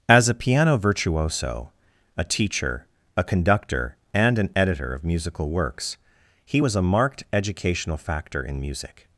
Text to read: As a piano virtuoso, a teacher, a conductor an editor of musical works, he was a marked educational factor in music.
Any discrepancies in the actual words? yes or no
yes